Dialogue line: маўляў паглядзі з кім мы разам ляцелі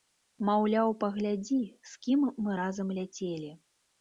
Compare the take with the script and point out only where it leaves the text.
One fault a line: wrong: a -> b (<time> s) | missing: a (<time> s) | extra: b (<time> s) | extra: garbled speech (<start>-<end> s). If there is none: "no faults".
no faults